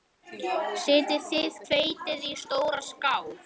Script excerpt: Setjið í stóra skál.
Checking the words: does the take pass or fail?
fail